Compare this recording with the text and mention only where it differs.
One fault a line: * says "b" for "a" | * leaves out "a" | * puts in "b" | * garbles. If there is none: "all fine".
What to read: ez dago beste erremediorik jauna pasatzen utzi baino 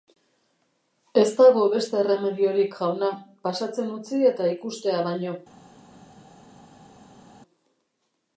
* puts in "eta ikustea"